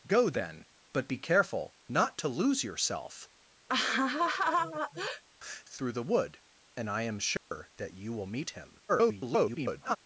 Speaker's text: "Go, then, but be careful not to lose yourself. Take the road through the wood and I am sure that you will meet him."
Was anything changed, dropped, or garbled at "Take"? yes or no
yes